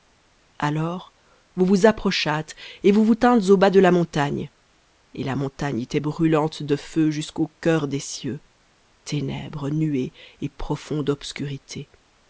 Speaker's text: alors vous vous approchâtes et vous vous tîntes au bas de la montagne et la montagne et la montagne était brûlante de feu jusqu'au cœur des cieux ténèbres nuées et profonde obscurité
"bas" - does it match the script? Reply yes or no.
yes